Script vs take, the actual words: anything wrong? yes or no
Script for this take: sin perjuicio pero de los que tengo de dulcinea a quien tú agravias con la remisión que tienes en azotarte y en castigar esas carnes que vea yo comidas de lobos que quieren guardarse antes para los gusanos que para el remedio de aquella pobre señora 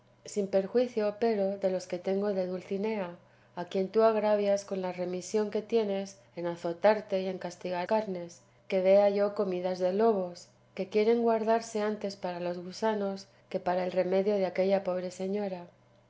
yes